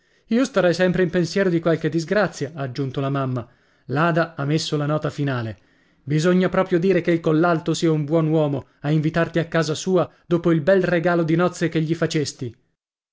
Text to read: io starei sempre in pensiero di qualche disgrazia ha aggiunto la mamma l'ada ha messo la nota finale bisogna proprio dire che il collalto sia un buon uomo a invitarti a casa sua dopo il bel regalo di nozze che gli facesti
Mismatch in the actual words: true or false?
false